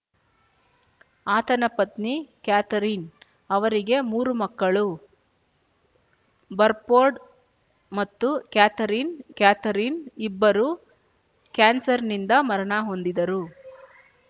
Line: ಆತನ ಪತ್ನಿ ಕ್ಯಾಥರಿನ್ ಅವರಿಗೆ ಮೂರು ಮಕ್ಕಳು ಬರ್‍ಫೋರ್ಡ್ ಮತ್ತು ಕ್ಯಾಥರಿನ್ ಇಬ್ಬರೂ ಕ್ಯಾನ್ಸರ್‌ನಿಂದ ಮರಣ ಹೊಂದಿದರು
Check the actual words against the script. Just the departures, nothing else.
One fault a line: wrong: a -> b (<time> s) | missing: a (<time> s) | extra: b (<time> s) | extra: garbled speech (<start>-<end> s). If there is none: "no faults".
extra: ಕ್ಯಾಥರಿನ್ (9.4 s)